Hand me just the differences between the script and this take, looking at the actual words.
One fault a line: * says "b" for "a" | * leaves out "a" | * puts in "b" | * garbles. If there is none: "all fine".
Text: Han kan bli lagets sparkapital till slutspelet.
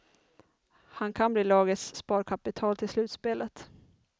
all fine